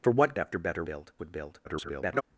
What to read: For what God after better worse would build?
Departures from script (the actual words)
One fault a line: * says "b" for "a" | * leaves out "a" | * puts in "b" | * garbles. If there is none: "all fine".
* leaves out "God"
* says "build" for "worse"
* garbles